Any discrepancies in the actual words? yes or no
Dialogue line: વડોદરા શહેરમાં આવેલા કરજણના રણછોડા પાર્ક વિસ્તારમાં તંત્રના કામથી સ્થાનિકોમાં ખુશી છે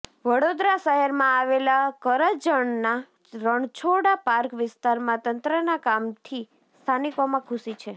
no